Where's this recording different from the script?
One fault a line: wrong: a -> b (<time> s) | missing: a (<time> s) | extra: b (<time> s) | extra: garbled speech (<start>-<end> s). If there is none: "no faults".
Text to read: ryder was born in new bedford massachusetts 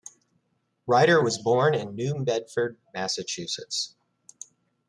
no faults